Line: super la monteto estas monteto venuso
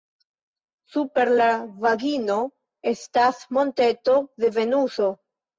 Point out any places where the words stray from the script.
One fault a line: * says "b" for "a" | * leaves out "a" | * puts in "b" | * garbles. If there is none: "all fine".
* says "vagino" for "monteto"
* puts in "de"